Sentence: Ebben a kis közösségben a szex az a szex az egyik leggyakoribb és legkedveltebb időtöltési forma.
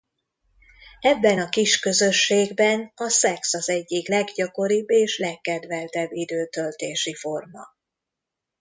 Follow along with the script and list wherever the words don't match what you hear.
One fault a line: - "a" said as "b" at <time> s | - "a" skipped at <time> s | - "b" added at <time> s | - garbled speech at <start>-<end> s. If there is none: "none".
- "a szex az" skipped at 3.7 s